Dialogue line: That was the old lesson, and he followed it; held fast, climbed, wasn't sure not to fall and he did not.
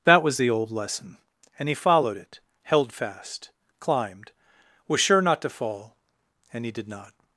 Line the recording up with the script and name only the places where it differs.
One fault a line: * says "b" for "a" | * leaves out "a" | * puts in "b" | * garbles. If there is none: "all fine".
* says "was" for "wasn't"